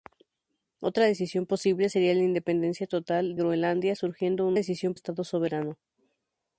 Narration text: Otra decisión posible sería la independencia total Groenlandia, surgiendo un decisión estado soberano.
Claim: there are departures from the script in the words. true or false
false